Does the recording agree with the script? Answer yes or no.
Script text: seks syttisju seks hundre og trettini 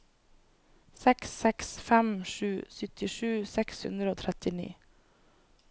no